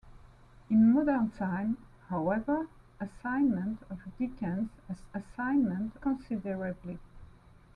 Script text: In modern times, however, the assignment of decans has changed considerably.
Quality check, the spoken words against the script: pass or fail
fail